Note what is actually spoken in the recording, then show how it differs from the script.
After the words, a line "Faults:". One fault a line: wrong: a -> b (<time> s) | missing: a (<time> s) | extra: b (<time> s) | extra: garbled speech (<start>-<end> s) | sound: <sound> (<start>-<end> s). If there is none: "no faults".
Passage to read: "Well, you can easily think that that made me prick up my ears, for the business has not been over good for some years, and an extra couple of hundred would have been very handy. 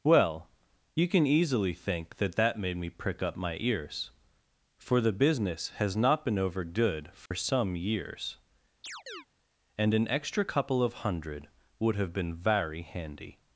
"Well, you can easily think that that made me prick up my ears, for the business has not been over good for some years, and an extra couple of hundred would have been very handy.
Faults:
sound: dropout (7.3-7.3 s)
sound: chirp (8.8-9.3 s)